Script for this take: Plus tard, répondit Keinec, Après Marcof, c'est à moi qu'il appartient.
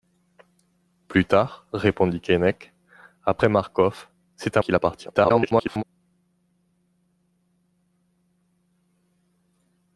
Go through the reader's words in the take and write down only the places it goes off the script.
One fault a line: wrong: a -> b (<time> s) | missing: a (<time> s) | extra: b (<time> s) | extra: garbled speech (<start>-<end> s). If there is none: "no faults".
missing: moi (4.6 s)
extra: garbled speech (5.1-5.8 s)